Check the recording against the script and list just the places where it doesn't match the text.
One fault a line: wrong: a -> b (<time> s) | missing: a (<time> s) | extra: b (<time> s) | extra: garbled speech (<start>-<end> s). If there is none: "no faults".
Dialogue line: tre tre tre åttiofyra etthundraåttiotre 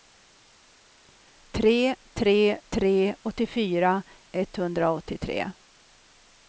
no faults